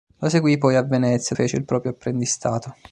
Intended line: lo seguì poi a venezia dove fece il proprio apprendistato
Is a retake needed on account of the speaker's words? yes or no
yes